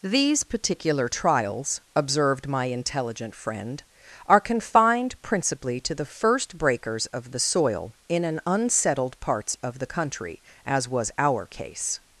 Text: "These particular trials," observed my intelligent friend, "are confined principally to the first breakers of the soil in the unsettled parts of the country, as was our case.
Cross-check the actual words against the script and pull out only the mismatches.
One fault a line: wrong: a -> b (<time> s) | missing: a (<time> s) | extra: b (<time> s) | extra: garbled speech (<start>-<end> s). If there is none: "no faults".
wrong: the -> an (8.2 s)